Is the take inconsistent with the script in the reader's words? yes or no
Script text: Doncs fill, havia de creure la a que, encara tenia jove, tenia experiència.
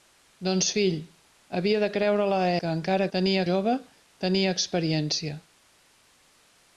no